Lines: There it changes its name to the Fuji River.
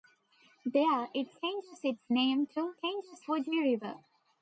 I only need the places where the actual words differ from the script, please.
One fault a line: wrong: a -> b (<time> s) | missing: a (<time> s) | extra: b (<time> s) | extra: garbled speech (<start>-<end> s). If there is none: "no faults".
wrong: the -> changes (2.8 s)